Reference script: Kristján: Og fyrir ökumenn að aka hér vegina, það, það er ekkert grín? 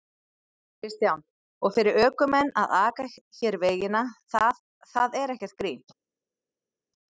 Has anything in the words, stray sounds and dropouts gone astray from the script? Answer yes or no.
no